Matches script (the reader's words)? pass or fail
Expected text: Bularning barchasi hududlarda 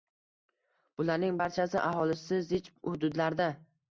fail